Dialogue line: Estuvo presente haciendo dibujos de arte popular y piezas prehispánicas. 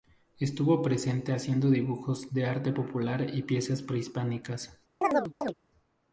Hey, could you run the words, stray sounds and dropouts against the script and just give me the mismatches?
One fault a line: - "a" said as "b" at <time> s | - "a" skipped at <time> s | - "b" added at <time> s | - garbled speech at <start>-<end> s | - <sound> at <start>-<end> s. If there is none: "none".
- chirp at 5.0-5.5 s